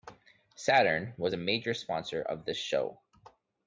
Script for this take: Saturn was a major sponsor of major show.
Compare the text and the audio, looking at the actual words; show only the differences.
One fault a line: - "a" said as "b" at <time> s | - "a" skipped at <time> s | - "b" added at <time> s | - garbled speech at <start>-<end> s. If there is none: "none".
- "major" said as "this" at 2.4 s